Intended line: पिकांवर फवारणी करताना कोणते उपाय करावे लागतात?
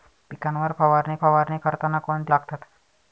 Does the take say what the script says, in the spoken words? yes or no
no